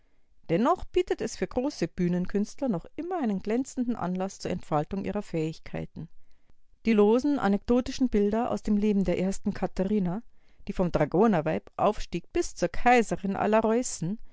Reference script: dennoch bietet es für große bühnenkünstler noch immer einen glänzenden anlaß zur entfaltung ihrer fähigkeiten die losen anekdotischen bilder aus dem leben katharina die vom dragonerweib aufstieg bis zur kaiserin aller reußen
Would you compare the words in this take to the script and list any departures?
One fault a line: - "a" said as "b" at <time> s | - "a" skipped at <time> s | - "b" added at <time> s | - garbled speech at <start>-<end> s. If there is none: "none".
- "der ersten" added at 9.1 s